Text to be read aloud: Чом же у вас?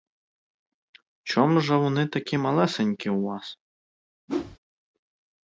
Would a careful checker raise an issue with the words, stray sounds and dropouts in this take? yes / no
yes